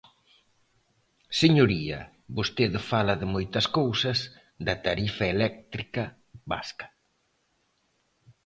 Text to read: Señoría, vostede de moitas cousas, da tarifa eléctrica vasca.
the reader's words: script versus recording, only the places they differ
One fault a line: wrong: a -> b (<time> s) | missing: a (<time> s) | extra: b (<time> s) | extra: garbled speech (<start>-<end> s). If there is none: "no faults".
extra: fala (2.9 s)